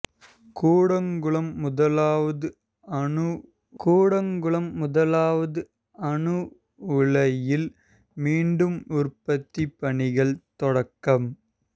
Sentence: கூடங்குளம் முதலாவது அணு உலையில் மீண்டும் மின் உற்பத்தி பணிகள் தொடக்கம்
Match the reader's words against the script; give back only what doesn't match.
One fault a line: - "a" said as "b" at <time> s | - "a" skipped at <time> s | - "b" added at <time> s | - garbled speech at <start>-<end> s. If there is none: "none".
- "கூடங்குளம் முதலாவது அணு" added at 3.8 s
- "மின்" skipped at 8.8 s